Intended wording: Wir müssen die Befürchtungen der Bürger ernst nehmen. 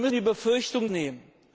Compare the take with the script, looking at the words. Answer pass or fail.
fail